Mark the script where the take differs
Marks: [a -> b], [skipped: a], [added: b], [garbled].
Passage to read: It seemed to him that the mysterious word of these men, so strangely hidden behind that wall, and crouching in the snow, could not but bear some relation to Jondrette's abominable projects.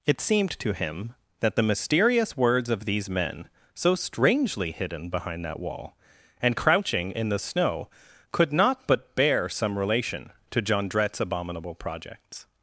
It seemed to him that the mysterious [word -> words] of these men, so strangely hidden behind that wall, and crouching in the snow, could not but bear some relation to Jondrette's abominable projects.